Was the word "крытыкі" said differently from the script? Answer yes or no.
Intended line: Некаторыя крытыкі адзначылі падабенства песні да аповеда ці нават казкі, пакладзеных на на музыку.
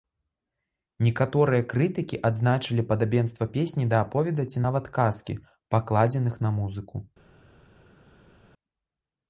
no